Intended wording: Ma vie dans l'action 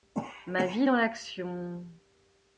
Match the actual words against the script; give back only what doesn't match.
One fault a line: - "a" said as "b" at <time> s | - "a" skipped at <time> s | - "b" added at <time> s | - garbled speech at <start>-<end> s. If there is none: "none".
none